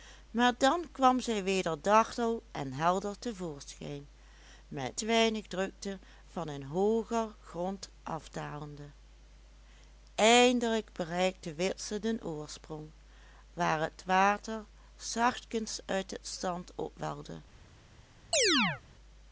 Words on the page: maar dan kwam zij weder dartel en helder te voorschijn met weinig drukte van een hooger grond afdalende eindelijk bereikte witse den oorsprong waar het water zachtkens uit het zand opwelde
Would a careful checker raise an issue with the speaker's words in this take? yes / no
no